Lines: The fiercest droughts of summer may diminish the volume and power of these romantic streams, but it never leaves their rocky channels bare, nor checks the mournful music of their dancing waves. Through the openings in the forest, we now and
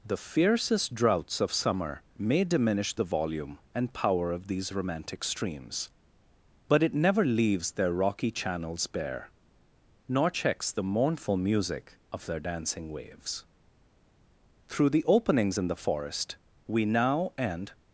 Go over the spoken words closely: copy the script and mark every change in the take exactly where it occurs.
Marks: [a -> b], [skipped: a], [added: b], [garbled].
The fiercest droughts of summer may diminish the volume and power of these romantic streams, but it never leaves their rocky channels bare, nor checks the mournful music of their dancing waves. Through the openings in the forest, we now and